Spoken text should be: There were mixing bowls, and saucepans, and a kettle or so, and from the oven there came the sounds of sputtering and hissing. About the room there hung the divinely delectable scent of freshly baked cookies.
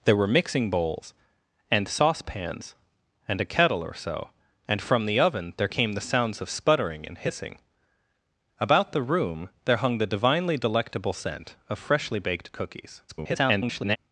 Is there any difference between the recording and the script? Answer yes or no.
yes